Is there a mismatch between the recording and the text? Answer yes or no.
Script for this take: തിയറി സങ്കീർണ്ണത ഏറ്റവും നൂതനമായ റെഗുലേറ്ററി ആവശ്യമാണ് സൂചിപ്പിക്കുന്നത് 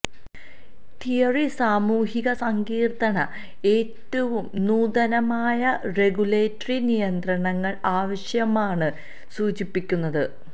yes